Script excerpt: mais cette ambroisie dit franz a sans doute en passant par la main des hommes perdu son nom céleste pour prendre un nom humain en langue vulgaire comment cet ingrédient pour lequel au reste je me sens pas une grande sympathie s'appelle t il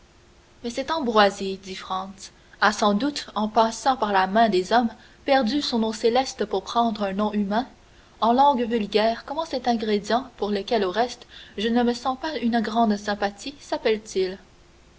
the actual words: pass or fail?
fail